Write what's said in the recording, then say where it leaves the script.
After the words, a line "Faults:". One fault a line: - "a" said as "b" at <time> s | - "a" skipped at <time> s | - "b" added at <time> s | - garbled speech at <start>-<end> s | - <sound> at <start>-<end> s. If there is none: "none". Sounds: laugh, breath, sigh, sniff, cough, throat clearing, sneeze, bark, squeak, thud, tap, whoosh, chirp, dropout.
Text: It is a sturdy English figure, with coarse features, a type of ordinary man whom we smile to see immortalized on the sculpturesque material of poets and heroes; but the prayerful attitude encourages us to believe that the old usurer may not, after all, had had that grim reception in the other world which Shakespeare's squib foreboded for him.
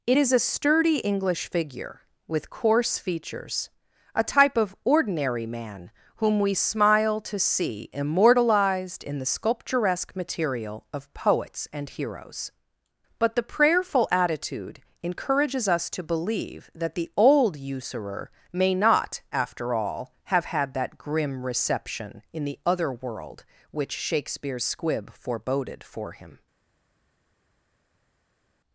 It is a sturdy English figure, with coarse features, a type of ordinary man whom we smile to see immortalized in the sculpturesque material of poets and heroes; but the prayerful attitude encourages us to believe that the old usurer may not, after all, have had that grim reception in the other world which Shakespeare's squib foreboded for him.
Faults:
- "on" said as "in" at 9.0 s
- "had" said as "have" at 20.2 s